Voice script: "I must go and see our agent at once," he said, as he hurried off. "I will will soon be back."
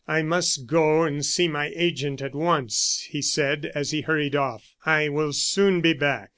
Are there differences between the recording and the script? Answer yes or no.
yes